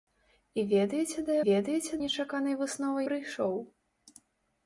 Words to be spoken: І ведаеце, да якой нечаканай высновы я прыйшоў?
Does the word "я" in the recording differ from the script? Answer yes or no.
yes